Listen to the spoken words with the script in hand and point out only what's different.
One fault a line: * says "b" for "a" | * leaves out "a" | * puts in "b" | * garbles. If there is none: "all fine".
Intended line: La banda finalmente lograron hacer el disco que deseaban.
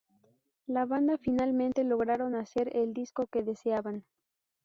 all fine